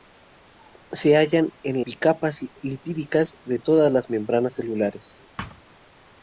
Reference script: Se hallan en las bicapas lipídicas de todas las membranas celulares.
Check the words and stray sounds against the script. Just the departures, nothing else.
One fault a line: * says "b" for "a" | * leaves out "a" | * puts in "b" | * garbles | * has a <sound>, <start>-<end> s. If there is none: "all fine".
* leaves out "las"
* has a thud, 5.4-5.6 s